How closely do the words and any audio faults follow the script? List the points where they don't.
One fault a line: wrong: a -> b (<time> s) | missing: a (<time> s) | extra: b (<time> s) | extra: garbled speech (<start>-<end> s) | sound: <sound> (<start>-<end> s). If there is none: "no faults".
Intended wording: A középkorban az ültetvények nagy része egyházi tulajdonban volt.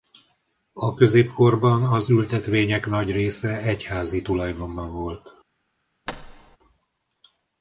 sound: thud (6.1-6.6 s)